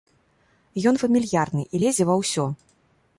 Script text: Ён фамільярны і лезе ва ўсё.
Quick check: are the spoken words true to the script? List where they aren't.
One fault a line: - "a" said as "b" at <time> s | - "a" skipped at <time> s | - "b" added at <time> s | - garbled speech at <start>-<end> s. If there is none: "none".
none